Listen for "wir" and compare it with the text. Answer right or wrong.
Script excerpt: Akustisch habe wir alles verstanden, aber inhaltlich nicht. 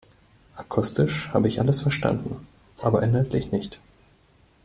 wrong